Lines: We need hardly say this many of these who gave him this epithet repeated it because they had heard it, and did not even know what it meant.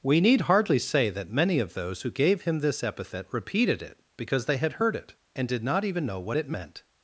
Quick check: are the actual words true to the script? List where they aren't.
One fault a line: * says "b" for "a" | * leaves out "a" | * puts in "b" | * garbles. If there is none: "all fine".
* says "that" for "this"
* says "those" for "these"